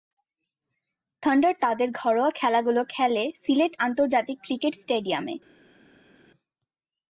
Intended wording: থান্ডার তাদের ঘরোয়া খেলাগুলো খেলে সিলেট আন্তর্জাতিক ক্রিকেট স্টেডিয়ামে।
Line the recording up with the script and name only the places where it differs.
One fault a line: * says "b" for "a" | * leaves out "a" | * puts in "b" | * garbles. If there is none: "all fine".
all fine